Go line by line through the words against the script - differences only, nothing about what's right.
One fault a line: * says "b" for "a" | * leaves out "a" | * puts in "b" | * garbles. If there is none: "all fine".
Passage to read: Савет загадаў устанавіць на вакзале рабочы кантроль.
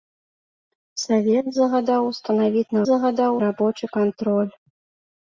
* says "загадаў" for "вакзале"